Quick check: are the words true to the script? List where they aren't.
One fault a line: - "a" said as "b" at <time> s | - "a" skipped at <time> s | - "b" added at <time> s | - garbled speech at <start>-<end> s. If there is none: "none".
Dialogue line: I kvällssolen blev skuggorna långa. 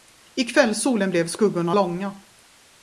none